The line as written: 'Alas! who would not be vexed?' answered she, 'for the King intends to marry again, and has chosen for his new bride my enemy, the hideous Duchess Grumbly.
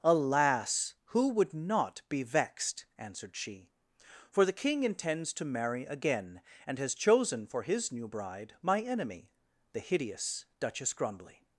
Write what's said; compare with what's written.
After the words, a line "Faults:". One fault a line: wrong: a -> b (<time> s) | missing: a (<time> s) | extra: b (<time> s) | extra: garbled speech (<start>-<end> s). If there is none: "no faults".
'Alas! who would not be vexed?' answered she, 'for the King intends to marry again, and has chosen for his new bride my enemy, the hideous Duchess Grumbly.
Faults:
no faults